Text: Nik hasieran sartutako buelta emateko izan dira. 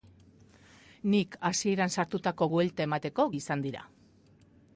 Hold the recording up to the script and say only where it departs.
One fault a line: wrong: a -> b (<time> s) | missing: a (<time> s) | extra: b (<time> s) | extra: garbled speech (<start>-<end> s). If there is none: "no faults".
no faults